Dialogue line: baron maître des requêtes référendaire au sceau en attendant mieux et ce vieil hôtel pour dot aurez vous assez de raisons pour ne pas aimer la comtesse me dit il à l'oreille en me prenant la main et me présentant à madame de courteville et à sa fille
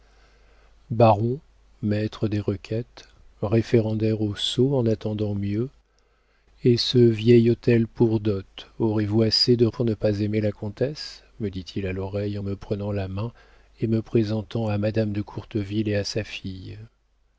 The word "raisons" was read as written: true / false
false